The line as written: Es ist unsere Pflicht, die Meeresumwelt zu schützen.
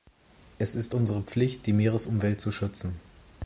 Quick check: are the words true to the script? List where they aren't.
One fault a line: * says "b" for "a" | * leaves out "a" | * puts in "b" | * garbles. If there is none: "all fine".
all fine